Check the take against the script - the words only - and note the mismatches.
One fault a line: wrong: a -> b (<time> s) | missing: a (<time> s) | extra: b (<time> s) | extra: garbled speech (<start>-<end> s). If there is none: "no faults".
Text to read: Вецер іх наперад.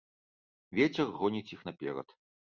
extra: гоніць (1.2 s)